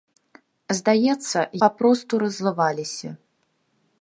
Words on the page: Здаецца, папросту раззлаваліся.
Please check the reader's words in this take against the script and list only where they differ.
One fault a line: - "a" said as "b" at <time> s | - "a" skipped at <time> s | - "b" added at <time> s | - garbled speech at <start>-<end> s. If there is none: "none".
none